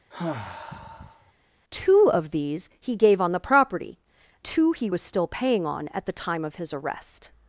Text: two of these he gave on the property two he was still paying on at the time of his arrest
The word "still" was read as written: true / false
true